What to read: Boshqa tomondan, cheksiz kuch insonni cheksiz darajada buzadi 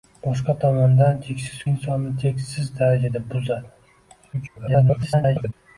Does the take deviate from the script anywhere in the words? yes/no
yes